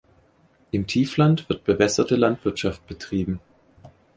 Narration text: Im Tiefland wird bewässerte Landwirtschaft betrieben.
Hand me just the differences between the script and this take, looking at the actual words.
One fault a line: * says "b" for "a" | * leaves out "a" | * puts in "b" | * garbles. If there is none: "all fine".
all fine